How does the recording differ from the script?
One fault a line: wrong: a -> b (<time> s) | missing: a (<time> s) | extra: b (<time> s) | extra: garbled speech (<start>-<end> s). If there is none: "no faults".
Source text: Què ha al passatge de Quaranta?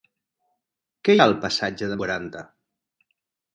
no faults